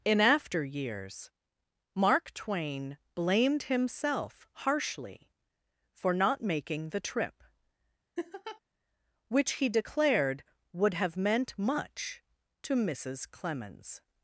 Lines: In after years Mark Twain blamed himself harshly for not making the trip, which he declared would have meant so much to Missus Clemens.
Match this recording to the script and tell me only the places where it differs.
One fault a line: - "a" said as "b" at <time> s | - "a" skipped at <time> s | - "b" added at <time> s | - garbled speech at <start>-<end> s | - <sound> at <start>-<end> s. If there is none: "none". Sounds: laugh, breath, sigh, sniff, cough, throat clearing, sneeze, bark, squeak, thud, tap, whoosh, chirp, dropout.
- laugh at 8.2-8.6 s
- "so" skipped at 11.6 s